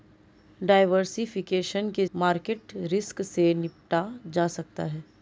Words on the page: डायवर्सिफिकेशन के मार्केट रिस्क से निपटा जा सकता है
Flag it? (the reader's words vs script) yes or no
no